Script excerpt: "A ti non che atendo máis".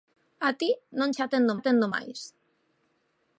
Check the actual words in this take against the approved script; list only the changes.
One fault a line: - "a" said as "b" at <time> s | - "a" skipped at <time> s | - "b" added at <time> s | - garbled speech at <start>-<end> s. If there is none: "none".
- "atendo" added at 1.6 s